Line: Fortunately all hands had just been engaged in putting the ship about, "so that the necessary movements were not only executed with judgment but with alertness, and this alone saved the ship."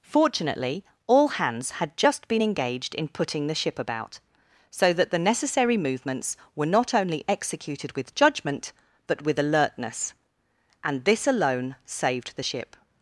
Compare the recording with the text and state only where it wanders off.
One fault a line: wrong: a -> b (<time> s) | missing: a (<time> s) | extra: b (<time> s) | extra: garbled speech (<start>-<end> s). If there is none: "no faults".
no faults